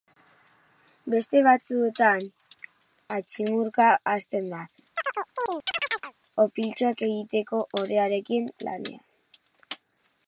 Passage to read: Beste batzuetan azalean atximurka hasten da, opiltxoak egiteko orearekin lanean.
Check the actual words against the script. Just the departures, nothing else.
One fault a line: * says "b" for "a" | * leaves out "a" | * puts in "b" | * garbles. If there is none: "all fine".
* leaves out "azalean"